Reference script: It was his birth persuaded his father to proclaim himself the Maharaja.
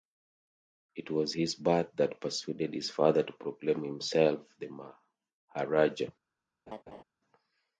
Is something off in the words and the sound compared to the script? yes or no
yes